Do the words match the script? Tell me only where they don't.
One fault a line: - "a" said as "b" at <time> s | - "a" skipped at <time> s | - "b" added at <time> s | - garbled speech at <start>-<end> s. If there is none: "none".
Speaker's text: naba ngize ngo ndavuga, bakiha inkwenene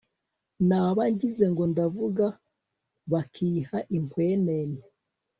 none